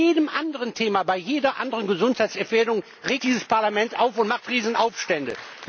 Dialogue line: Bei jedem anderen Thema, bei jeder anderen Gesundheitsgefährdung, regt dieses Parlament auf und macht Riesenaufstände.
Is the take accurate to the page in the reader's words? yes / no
yes